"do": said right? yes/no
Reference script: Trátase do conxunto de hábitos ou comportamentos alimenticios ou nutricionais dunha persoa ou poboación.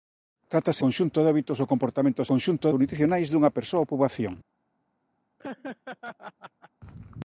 no